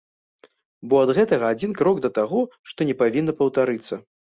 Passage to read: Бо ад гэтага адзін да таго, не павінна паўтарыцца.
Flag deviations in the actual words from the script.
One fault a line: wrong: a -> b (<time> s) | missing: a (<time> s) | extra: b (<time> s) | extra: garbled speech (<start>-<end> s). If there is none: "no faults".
extra: крок (1.8 s)
extra: што (2.7 s)